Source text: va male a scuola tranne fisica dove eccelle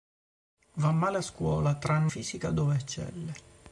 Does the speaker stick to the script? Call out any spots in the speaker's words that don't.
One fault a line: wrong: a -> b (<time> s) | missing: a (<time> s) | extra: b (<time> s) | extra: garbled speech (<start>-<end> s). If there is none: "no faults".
no faults